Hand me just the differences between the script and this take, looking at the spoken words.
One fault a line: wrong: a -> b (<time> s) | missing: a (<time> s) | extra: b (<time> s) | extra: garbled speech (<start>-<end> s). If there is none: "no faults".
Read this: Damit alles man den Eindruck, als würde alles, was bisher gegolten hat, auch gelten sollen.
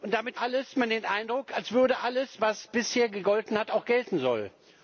no faults